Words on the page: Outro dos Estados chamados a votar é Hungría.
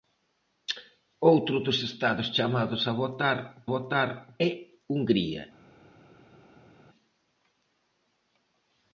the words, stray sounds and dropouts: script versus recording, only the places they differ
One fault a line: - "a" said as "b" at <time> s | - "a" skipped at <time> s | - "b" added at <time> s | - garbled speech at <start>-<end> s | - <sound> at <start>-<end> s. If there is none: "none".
- "votar" added at 3.7 s